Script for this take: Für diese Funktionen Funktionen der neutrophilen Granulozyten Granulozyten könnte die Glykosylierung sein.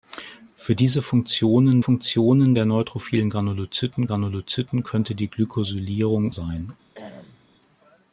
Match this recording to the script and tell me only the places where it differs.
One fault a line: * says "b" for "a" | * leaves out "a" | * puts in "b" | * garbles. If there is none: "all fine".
all fine